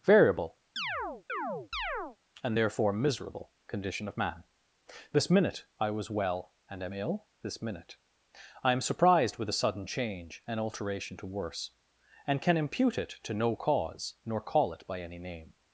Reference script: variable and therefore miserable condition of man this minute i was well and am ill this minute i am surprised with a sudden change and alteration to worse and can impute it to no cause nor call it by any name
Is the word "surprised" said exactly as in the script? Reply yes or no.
yes